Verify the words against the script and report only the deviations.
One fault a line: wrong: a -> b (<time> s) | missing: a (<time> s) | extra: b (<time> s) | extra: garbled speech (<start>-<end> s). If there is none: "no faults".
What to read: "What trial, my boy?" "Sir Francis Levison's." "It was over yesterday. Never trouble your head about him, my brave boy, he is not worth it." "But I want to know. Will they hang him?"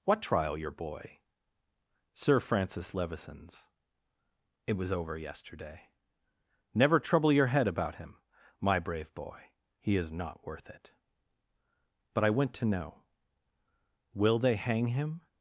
wrong: my -> your (0.6 s)
wrong: want -> went (12.3 s)